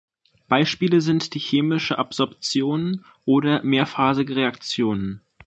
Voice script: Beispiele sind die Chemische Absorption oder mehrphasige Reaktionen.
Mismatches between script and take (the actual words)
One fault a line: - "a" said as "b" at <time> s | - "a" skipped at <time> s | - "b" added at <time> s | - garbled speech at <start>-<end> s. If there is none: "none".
none